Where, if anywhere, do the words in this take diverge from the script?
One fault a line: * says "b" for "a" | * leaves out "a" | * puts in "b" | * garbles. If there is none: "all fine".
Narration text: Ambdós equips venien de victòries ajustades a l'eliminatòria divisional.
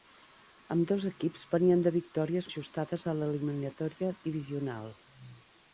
all fine